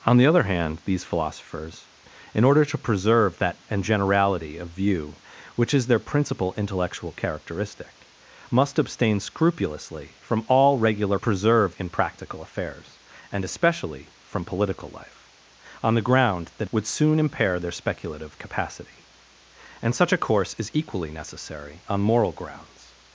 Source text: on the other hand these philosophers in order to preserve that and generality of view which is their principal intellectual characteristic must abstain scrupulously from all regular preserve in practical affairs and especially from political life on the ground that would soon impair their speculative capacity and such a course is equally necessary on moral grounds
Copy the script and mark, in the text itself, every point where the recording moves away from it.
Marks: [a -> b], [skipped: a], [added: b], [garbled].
on the other hand these philosophers in order to preserve that and generality of view which is their principal intellectual characteristic must abstain scrupulously from all regular preserve in practical affairs and especially from political life on the ground that would soon impair their speculative capacity and such a course is equally necessary on moral grounds